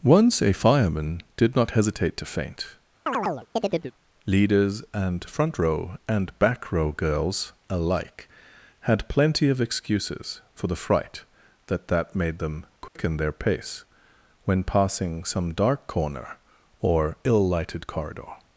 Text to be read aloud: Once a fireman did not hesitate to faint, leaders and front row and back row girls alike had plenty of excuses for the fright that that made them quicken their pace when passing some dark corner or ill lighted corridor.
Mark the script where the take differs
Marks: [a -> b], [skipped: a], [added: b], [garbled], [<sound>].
Once a fireman did not hesitate to faint, [chirp] leaders and front row and back row girls alike had plenty of excuses for the fright that that made them quicken [dropout] their pace when passing some dark corner or ill lighted corridor.